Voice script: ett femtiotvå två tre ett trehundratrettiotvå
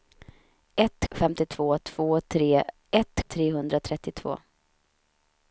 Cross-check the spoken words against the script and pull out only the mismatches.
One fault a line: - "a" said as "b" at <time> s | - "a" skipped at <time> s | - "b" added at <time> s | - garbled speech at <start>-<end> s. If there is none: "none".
none